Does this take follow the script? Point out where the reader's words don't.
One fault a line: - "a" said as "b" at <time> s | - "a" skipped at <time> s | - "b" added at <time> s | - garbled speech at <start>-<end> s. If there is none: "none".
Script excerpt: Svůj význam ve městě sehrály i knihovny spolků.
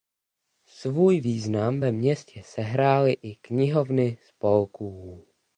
none